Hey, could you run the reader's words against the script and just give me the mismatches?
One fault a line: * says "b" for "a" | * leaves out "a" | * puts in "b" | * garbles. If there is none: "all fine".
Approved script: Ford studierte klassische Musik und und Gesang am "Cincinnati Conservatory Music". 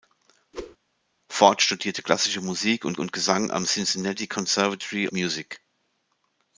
all fine